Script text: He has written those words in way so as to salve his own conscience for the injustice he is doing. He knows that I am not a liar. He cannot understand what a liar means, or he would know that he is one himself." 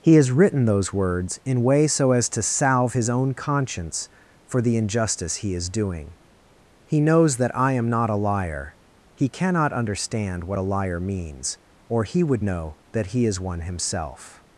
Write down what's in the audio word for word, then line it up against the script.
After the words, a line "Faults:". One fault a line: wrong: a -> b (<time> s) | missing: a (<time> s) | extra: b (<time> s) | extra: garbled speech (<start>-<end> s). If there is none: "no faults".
He has written those words in way so as to salve his own conscience for the injustice he is doing. He knows that I am not a liar. He cannot understand what a liar means, or he would know that he is one himself."
Faults:
no faults